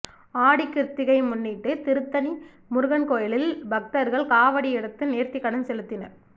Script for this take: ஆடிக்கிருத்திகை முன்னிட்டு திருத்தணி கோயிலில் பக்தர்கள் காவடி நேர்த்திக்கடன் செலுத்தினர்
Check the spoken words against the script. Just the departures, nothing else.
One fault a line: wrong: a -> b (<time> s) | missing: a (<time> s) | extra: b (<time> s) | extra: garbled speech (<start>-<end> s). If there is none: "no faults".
extra: முருகன் (2.7 s)
extra: எடுத்து (4.8 s)